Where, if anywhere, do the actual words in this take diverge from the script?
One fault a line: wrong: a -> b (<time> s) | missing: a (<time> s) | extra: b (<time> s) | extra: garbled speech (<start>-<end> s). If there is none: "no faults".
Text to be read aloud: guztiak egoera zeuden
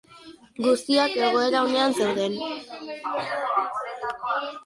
extra: onean (1.7 s)